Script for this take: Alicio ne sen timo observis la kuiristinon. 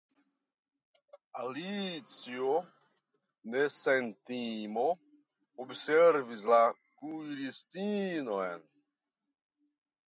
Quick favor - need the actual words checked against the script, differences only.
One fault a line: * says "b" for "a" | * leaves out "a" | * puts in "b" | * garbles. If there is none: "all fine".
all fine